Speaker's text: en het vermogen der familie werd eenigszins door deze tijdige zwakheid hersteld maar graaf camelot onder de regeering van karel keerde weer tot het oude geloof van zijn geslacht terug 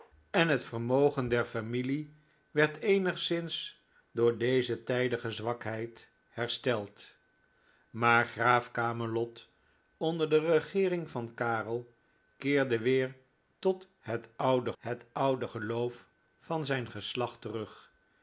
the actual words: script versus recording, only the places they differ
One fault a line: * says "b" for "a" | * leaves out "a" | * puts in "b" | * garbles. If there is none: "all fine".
* puts in "het oude"